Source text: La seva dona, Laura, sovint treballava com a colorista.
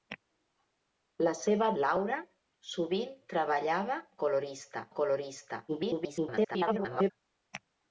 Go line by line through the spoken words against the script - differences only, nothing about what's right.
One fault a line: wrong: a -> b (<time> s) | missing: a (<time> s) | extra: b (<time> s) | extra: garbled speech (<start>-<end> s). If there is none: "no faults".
missing: dona (1.7 s)
wrong: com -> colorista (4.2 s)
extra: garbled speech (5.7-7.1 s)